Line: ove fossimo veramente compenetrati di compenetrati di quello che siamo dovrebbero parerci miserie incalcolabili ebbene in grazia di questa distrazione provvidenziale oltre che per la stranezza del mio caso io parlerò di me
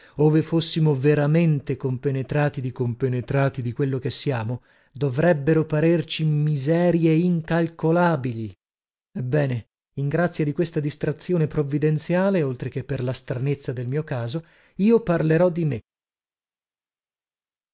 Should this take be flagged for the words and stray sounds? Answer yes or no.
no